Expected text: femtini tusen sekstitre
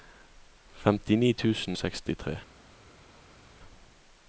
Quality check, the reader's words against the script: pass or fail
pass